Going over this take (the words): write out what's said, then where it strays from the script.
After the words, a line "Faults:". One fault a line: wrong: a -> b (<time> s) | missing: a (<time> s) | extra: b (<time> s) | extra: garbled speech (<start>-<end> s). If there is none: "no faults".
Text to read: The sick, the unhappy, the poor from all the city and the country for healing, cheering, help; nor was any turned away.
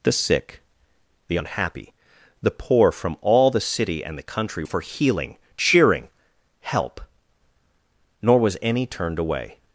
The sick, the unhappy, the poor from all the city and the country for healing, cheering, help; nor was any turned away.
Faults:
no faults